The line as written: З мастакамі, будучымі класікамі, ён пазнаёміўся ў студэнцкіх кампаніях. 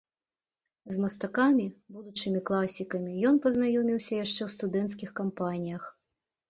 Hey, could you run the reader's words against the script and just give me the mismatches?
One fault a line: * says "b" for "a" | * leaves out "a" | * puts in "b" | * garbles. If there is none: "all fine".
* puts in "яшчэ"